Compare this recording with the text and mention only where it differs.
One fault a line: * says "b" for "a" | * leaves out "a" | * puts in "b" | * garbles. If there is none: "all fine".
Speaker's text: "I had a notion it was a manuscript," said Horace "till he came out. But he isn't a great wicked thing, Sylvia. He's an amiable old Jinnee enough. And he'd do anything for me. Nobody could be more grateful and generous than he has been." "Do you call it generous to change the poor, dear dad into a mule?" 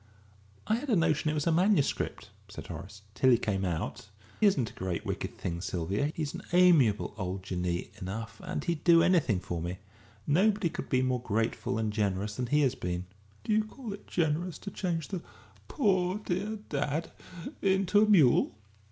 * leaves out "But he"